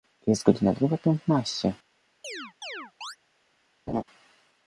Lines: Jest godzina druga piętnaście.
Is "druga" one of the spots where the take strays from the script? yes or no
no